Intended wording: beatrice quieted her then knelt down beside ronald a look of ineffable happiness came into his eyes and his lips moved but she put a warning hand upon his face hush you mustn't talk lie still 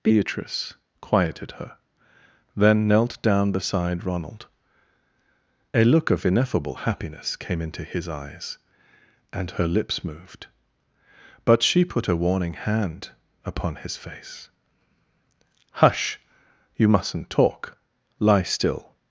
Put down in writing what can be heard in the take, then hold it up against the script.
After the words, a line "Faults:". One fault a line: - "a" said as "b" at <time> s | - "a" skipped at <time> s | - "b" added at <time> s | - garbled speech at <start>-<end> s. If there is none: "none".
beatrice quieted her then knelt down beside ronald a look of ineffable happiness came into his eyes and her lips moved but she put a warning hand upon his face hush you mustn't talk lie still
Faults:
- "his" said as "her" at 9.5 s